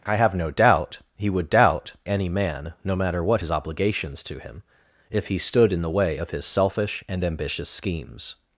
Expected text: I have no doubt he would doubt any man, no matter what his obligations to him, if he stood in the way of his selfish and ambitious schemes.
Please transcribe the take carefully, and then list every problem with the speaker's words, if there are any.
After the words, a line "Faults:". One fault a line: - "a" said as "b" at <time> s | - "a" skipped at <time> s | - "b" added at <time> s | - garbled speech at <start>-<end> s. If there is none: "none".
I have no doubt he would doubt any man, no matter what his obligations to him, if he stood in the way of his selfish and ambitious schemes.
Faults:
none